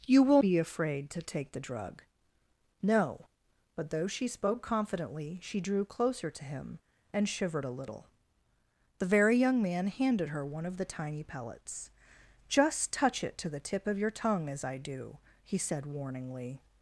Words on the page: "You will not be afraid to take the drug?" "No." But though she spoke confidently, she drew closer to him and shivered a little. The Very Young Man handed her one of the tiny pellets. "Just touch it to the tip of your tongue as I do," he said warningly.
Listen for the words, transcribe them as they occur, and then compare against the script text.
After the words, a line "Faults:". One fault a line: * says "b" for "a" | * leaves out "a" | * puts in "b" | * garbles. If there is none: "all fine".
"You will be afraid to take the drug?" "No." But though she spoke confidently, she drew closer to him and shivered a little. The Very Young Man handed her one of the tiny pellets. "Just touch it to the tip of your tongue as I do," he said warningly.
Faults:
* leaves out "not"